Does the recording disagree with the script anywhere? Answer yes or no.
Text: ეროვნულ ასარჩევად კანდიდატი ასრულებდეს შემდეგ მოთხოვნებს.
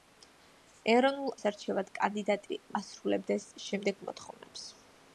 no